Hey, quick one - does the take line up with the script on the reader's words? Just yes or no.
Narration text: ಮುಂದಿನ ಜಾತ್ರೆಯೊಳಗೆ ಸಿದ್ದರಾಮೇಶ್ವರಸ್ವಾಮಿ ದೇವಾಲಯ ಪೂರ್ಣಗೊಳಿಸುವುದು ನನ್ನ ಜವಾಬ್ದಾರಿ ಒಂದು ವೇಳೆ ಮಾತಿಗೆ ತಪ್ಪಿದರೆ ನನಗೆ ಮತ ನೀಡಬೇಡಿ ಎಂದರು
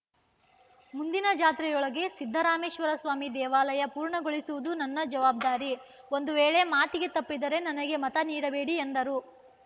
yes